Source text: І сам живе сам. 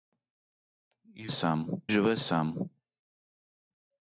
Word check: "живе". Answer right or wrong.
right